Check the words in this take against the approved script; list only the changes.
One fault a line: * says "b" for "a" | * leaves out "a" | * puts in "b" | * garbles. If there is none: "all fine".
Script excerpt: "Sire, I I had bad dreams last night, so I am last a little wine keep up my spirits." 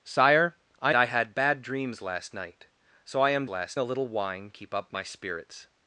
all fine